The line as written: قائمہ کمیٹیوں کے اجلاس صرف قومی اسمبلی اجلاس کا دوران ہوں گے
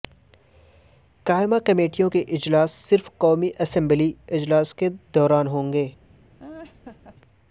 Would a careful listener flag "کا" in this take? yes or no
yes